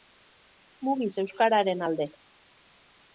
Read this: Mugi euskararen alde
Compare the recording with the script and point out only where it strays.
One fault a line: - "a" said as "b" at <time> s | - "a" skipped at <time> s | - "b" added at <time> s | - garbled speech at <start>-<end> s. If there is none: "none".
none